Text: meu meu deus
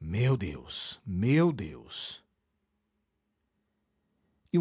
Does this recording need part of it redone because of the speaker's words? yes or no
yes